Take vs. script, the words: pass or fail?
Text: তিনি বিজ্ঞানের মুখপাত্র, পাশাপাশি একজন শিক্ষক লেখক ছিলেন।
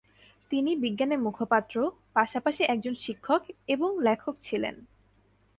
fail